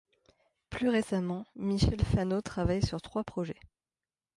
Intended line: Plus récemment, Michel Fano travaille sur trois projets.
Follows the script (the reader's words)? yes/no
yes